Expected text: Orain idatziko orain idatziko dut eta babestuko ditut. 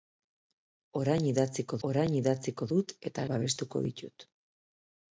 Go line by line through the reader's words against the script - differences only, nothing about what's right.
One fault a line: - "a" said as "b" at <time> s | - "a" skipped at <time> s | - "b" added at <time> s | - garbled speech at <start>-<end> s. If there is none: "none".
none